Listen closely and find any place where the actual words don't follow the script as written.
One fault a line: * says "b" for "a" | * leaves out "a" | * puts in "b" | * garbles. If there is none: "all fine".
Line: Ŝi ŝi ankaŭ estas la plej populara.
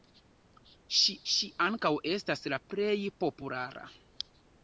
all fine